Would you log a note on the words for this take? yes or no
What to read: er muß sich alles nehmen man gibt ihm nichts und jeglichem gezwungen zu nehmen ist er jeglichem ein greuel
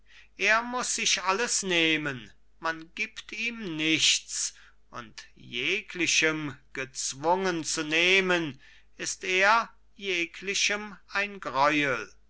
no